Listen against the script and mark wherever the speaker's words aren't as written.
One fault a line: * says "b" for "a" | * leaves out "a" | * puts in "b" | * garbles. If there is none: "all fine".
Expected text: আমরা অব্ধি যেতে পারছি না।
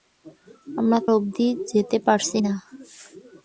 all fine